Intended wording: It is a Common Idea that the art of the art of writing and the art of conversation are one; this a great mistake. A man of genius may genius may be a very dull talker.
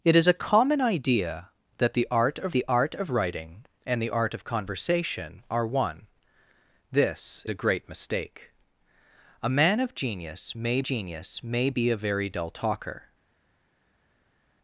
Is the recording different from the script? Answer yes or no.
no